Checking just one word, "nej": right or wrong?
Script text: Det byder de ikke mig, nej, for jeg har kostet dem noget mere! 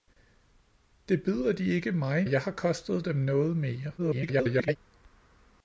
wrong